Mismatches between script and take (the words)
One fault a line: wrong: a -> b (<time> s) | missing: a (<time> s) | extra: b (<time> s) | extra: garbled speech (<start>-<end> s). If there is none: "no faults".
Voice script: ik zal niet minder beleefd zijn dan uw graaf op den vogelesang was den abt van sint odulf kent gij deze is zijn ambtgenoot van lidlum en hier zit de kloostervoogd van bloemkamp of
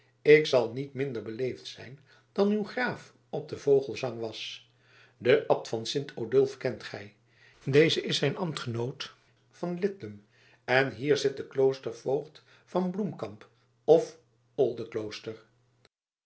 no faults